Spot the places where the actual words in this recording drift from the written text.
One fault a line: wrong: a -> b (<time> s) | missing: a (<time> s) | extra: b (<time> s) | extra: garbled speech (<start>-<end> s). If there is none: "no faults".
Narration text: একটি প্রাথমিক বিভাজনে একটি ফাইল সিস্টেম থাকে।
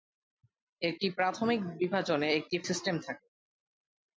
missing: ফাইল (2.6 s)